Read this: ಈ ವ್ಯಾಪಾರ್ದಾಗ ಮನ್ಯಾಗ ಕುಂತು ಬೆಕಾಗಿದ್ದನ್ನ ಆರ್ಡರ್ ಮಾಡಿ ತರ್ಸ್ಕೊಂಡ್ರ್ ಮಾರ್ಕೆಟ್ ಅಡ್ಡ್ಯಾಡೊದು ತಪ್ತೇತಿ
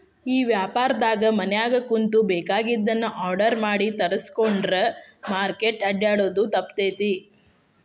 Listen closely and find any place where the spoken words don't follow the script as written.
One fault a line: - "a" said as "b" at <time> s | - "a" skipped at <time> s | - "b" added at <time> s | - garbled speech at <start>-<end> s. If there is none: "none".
none